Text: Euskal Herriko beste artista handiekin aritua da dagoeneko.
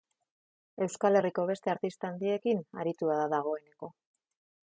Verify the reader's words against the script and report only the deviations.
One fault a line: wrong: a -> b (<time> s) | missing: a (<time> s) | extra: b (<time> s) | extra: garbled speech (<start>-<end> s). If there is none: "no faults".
no faults